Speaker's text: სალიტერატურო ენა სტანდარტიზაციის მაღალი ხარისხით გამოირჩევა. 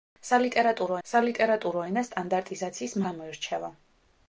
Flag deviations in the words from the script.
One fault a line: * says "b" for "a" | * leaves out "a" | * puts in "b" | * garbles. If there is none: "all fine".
* puts in "სალიტერატურო"
* leaves out "მაღალი ხარისხით"